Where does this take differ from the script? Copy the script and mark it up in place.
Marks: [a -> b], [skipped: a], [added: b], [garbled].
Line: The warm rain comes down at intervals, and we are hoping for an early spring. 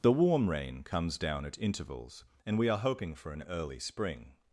The warm rain comes down at intervals, and we are hoping for an early spring.